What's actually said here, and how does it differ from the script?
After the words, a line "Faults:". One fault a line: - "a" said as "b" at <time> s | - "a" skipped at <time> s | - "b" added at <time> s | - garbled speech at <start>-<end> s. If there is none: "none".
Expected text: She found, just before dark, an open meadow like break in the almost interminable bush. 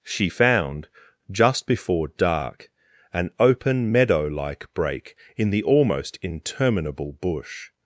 She found, just before dark, an open meadow like break in the almost interminable bush.
Faults:
none